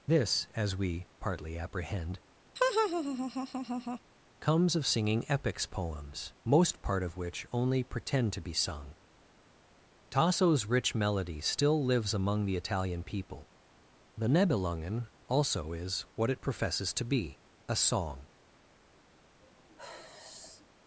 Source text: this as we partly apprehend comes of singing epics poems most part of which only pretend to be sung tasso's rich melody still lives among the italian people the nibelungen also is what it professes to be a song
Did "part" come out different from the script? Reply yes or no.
no